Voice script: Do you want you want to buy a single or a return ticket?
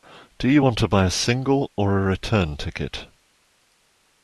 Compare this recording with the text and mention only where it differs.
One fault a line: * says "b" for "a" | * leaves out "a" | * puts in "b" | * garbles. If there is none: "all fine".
* leaves out "you want"